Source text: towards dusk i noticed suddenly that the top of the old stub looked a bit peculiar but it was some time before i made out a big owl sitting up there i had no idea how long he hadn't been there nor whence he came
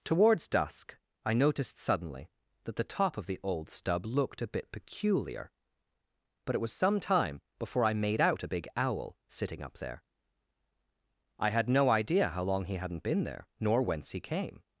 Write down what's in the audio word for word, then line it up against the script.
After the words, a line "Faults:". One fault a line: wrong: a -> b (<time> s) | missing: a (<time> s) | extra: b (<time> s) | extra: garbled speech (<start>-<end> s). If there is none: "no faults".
towards dusk i noticed suddenly that the top of the old stub looked a bit peculiar but it was some time before i made out a big owl sitting up there i had no idea how long he hadn't been there nor whence he came
Faults:
no faults